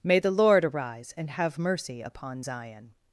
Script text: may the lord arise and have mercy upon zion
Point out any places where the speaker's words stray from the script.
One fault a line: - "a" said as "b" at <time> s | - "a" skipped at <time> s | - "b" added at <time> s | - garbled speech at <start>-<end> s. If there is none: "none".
none